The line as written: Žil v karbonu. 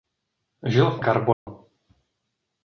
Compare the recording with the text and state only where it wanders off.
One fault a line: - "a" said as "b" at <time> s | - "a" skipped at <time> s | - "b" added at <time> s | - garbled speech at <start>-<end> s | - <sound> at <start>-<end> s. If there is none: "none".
- dropout at 1.3-1.5 s